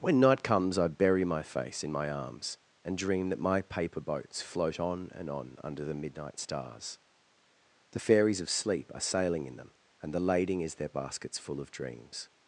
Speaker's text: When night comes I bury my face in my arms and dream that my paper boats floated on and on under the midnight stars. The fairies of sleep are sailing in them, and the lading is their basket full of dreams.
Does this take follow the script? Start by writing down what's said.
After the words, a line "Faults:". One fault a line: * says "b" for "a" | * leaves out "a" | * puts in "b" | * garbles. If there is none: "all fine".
When night comes I bury my face in my arms and dream that my paper boats float on and on under the midnight stars. The fairies of sleep are sailing in them, and the lading is their baskets full of dreams.
Faults:
* says "float" for "floated"
* says "baskets" for "basket"